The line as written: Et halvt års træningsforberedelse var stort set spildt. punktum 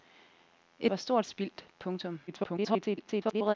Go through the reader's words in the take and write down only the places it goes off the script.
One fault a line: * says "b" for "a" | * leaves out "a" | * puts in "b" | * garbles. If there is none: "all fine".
* leaves out "halvt års træningsforberedelse"
* leaves out "set"
* garbles